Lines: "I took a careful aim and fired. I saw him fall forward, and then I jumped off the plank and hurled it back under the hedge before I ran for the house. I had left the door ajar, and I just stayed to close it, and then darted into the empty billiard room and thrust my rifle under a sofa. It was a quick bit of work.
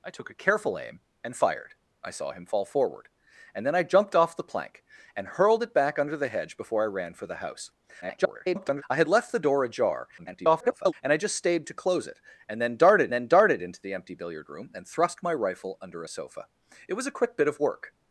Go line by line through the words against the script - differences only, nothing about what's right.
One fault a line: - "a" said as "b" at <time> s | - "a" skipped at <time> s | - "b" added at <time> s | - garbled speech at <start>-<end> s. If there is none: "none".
- garbled speech at 8.0-8.8 s
- garbled speech at 10.2-10.9 s
- "then darted" added at 13.1 s